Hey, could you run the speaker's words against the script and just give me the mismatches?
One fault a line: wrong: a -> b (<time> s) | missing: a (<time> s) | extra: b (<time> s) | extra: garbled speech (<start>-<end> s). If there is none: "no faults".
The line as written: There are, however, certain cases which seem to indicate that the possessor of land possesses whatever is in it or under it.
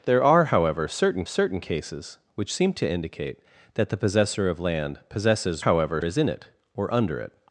extra: certain (1.2 s)
wrong: whatever -> however (5.6 s)